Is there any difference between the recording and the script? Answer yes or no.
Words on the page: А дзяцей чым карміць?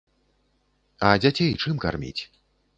no